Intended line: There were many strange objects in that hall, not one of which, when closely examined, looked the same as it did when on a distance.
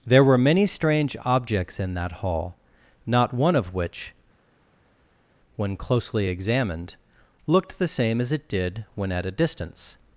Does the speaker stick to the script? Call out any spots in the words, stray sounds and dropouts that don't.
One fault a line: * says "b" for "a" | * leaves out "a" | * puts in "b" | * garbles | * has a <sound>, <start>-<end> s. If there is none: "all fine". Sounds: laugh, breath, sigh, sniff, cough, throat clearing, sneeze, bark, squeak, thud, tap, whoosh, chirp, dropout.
* says "at" for "on"